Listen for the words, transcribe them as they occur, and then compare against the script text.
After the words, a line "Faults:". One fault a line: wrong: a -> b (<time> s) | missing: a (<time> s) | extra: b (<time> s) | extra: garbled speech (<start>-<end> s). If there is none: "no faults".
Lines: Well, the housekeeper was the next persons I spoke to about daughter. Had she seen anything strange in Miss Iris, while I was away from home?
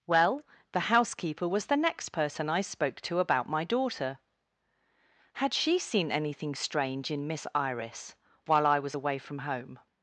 Well, the housekeeper was the next person I spoke to about my daughter. Had she seen anything strange in Miss Iris, while I was away from home?
Faults:
wrong: persons -> person (2.1 s)
extra: my (3.5 s)